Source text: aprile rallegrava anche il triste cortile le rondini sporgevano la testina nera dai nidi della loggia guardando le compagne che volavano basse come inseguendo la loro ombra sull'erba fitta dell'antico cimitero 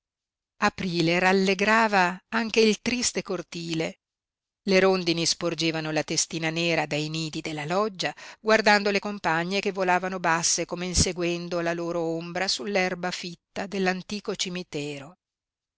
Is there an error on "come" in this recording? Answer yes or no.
no